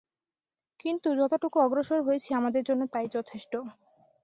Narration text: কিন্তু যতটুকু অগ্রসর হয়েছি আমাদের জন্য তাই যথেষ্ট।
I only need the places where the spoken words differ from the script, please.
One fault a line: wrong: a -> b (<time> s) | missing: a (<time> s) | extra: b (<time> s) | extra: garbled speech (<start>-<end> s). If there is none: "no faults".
no faults